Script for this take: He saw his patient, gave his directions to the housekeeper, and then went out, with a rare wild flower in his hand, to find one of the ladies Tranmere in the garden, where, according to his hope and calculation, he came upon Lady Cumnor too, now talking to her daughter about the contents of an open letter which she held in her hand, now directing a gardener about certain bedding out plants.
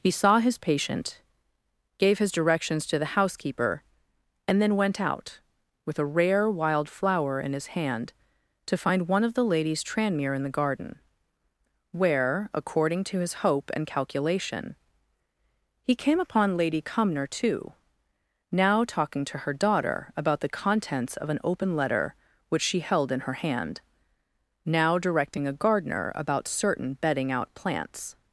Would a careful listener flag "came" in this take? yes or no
no